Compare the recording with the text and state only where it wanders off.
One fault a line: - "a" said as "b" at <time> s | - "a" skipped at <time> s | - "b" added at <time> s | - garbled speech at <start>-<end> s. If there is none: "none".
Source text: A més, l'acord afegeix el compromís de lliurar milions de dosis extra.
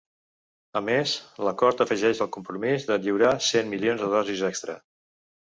- "cent" added at 3.5 s